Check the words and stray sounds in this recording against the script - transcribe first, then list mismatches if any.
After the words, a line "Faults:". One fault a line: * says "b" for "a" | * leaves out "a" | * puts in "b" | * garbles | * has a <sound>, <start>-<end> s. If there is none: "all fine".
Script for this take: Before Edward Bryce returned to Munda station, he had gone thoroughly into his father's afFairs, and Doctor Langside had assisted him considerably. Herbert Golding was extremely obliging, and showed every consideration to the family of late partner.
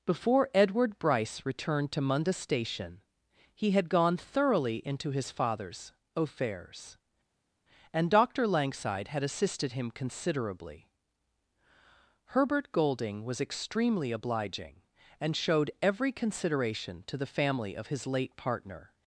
Before Edward Bryce returned to Munda station, he had gone thoroughly into his father's afFairs, and Doctor Langside had assisted him considerably. Herbert Golding was extremely obliging, and showed every consideration to the family of his late partner.
Faults:
* puts in "his"